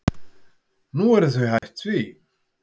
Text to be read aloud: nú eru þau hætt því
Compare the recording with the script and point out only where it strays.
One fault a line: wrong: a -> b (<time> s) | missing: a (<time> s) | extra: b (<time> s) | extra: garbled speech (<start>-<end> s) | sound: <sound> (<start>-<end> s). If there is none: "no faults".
sound: dropout (1.6-1.6 s)